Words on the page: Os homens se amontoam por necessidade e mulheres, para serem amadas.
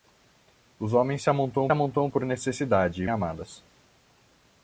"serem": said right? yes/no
no